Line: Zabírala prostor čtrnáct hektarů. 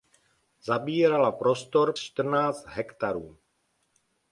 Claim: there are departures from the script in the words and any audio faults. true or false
false